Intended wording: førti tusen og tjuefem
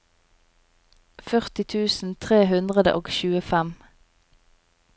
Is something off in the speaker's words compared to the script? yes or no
yes